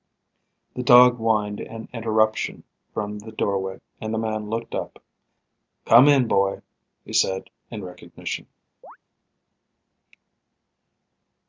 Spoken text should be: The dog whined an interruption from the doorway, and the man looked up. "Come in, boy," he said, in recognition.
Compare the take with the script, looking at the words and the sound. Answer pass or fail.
fail